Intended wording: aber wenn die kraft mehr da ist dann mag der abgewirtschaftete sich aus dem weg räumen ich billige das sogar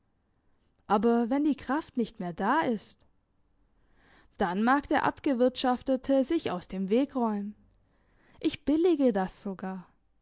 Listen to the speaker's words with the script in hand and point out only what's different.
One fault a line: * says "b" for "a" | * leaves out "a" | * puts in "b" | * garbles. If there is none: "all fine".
* puts in "nicht"